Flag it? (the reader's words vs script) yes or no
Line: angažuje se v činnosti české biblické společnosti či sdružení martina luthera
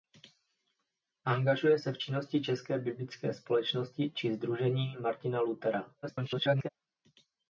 yes